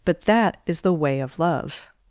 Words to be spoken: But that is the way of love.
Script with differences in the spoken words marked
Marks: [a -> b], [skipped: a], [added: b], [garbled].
But that is the way of love.